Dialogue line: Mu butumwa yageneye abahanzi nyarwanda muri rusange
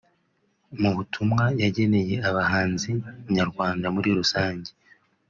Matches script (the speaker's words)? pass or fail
pass